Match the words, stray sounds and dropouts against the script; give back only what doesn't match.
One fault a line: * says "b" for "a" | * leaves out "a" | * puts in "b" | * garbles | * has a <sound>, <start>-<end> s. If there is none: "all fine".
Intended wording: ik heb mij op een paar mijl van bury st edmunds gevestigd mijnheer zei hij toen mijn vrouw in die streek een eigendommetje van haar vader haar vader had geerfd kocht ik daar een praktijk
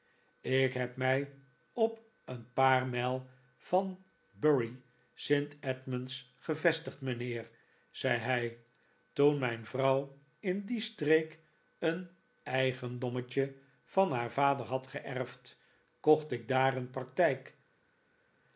* leaves out "haar vader"